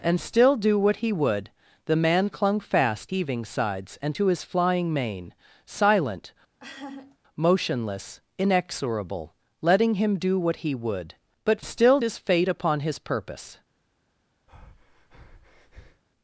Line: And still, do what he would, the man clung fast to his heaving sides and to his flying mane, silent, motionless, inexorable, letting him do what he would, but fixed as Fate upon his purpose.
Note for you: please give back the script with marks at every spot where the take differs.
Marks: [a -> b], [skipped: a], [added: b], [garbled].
And still, do what he would, the man clung fast [skipped: to his] heaving sides and to his flying mane, silent, motionless, inexorable, letting him do what he would, but [fixed -> still] as Fate upon his purpose.